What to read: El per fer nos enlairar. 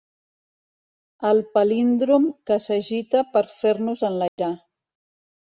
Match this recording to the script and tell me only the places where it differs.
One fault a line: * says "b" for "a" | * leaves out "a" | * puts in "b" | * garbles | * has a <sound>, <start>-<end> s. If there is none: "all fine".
* puts in "palíndrom que s'agita"
* has a dropout, 4.3-4.4 s